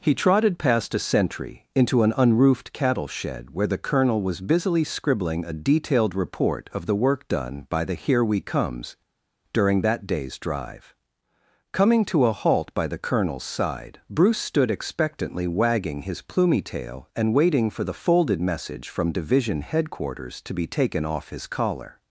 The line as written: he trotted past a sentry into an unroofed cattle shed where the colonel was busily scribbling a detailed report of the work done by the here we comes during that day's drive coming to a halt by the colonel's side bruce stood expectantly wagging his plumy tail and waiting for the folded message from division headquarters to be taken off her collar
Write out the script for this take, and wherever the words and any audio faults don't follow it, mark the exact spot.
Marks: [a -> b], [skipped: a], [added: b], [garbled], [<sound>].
he trotted past a sentry into an unroofed cattle shed where the colonel was busily scribbling a detailed report of the work done by the here we comes during that day's drive coming to a halt by the colonel's side bruce stood expectantly wagging his plumy tail and waiting for the folded message from division headquarters to be taken off [her -> his] collar